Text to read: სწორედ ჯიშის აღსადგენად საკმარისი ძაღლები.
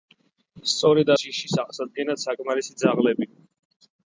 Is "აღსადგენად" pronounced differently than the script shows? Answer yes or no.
no